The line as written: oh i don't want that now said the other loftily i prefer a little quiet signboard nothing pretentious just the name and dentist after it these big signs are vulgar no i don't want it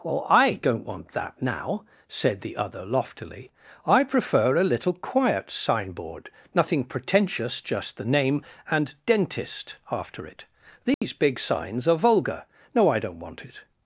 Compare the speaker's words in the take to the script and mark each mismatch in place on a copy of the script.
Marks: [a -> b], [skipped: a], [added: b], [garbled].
oh i don't want that now said the other loftily i prefer a little quiet signboard nothing pretentious just the name and dentist after it these big signs are vulgar no i don't want it